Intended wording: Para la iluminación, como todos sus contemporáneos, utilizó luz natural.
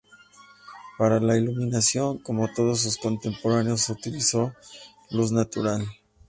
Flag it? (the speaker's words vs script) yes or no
no